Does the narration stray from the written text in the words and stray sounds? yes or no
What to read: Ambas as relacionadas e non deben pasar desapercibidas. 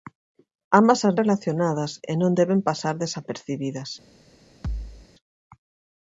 yes